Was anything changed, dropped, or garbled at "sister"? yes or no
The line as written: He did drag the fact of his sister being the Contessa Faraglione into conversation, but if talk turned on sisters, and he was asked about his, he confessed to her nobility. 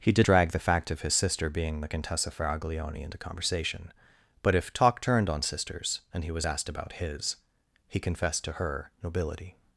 no